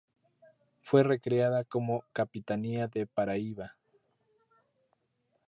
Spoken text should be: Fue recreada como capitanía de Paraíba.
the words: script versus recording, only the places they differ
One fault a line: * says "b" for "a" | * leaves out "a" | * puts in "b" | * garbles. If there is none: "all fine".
all fine